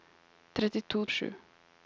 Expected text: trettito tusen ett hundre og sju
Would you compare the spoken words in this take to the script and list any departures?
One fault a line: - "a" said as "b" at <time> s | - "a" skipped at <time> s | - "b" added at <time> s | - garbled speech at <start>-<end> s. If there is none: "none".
- "tusen ett hundre" skipped at 1.1 s